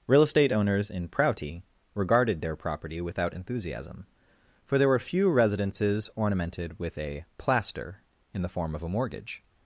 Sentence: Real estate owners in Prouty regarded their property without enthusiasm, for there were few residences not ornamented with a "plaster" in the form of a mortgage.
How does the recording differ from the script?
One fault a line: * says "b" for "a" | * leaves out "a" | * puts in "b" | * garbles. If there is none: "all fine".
* leaves out "not"